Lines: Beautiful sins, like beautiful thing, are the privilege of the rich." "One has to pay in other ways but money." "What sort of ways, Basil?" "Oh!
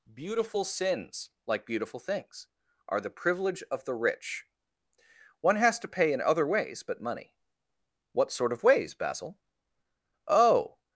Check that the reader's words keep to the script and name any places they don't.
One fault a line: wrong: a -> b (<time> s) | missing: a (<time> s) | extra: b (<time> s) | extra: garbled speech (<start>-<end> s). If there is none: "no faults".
wrong: thing -> things (2.0 s)